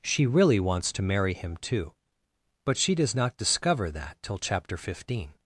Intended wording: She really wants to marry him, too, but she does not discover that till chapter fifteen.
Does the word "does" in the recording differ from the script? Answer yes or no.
no